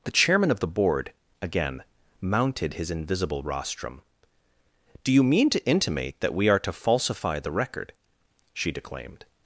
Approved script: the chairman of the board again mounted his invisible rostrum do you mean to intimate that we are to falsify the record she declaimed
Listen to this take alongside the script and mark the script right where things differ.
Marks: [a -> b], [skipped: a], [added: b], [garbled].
the chairman of the board again mounted his invisible rostrum do you mean to intimate that we are to falsify the record she declaimed